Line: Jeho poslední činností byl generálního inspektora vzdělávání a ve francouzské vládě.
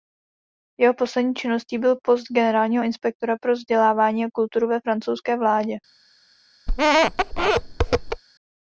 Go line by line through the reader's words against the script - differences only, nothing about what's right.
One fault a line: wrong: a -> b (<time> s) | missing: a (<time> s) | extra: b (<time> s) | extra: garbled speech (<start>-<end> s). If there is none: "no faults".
extra: post (2.0 s)
extra: pro (3.4 s)
extra: kulturu (4.3 s)